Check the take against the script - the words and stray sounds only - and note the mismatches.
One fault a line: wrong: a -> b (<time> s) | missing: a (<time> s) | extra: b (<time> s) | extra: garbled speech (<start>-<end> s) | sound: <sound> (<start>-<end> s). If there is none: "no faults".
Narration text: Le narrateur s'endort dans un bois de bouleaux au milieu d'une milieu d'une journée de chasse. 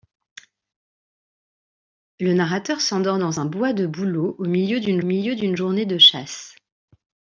no faults